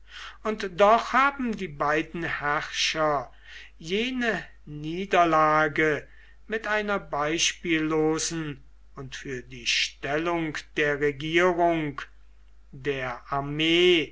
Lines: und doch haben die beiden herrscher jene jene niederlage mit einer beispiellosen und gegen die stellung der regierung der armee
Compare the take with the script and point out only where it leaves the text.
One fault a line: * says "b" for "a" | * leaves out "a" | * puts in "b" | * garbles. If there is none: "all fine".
* leaves out "jene"
* says "für" for "gegen"